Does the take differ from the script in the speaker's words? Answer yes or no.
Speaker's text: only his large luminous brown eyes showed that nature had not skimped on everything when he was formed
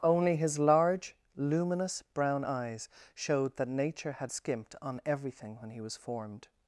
yes